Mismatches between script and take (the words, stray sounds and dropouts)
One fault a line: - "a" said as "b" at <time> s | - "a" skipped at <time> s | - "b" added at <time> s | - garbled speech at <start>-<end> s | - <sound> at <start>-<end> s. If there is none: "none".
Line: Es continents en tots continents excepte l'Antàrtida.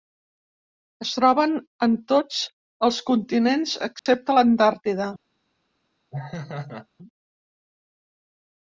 - "continents" said as "troben" at 1.2 s
- "els" added at 2.9 s
- dropout at 4.0-4.1 s
- laugh at 6.1-6.9 s